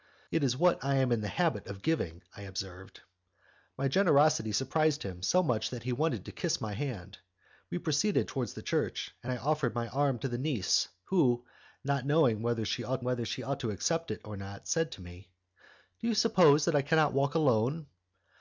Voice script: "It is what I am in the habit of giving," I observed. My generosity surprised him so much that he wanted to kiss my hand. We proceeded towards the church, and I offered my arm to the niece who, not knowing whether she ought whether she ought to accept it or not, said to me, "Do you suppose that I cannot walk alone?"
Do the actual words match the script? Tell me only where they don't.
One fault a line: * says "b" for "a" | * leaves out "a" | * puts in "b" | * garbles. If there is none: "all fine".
all fine